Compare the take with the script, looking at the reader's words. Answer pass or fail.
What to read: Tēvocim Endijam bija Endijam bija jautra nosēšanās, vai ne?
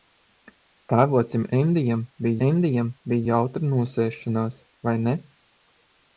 pass